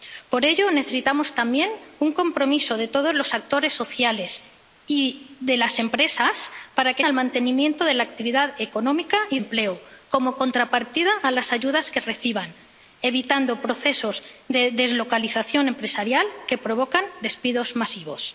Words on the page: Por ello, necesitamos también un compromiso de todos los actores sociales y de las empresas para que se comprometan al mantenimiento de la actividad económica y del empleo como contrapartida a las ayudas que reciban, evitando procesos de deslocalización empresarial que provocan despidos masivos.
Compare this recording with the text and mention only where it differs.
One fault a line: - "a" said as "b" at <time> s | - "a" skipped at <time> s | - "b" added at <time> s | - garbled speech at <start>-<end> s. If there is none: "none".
- "se comprometan" skipped at 7.0 s
- "del" skipped at 9.4 s